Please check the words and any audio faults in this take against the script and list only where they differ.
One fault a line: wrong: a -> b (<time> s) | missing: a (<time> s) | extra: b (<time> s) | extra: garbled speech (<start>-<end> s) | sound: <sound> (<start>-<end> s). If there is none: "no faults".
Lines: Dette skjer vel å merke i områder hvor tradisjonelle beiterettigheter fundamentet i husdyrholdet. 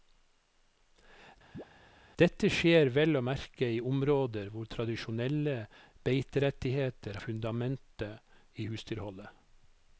sound: chirp (1.5-1.7 s)